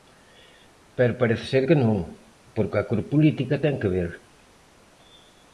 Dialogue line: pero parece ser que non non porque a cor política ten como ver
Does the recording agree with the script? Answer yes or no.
no